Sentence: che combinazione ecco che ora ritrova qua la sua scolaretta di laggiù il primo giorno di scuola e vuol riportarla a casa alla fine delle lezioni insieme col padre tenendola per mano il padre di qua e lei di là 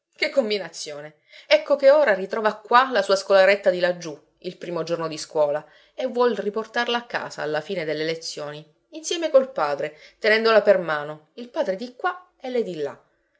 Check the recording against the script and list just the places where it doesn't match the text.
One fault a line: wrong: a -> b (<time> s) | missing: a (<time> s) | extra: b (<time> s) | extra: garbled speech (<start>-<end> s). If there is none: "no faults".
no faults